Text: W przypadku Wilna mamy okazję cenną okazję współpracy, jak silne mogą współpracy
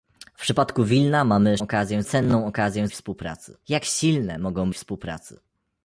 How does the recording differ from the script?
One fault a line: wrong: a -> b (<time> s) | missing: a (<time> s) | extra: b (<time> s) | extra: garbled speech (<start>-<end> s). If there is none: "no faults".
no faults